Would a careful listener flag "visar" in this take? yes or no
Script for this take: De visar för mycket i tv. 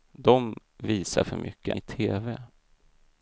no